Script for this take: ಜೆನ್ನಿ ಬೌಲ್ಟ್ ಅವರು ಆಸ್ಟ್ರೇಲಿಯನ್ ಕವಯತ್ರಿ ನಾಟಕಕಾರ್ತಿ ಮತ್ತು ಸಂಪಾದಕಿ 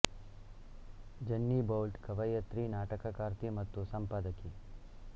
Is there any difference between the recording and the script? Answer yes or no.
yes